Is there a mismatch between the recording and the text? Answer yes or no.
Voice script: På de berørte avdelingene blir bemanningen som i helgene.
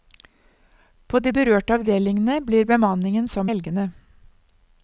yes